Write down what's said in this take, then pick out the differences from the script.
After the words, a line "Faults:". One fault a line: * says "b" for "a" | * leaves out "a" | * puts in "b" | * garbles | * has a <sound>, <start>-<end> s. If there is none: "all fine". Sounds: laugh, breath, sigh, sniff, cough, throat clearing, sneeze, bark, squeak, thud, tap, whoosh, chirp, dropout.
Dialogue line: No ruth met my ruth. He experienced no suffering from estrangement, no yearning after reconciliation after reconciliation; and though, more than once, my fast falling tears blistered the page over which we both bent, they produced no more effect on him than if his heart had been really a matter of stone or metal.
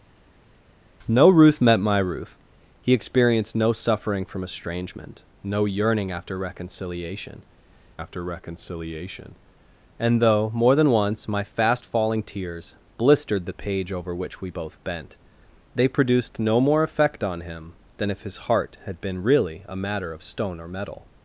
No ruth met my ruth. He experienced no suffering from estrangement, no yearning after reconciliation after reconciliation; and though, more than once, my fast falling tears blistered the page over which we both bent, they produced no more effect on him than if his heart had been really a matter of stone or metal.
Faults:
all fine